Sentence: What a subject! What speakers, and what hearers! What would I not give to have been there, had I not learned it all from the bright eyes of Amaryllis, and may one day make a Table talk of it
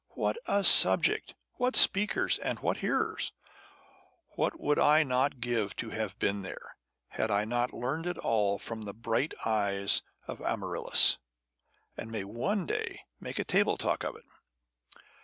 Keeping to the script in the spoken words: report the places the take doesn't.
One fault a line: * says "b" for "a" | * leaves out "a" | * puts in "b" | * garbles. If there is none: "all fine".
all fine